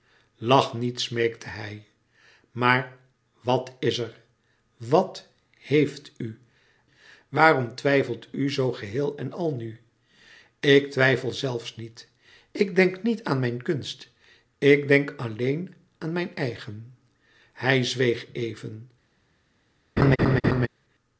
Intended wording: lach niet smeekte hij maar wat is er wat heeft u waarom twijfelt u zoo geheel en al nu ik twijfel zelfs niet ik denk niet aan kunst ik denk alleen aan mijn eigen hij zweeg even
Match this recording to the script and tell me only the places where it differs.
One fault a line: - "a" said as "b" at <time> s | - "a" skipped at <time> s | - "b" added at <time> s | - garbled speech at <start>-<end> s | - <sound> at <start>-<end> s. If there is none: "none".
- "mijn" added at 13.4 s
- laugh at 20.0-20.7 s